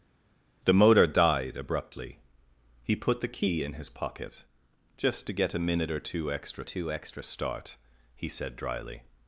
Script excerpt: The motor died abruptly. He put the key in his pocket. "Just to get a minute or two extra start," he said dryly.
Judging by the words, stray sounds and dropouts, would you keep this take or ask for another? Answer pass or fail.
fail